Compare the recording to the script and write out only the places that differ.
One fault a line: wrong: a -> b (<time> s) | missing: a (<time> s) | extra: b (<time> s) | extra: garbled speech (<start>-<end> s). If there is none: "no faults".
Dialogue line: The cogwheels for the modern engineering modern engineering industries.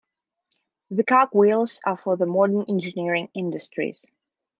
extra: are (1.8 s)
missing: modern engineering (3.3 s)